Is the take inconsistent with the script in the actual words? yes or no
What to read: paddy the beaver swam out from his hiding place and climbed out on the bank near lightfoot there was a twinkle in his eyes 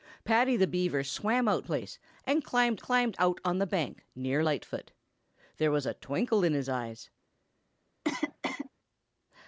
yes